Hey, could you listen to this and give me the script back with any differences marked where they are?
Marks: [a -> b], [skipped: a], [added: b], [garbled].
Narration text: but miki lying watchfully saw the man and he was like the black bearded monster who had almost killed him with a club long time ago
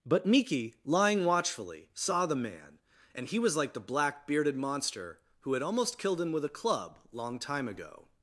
but miki lying watchfully saw the man and he was like the black bearded monster who had almost killed him with a club long time ago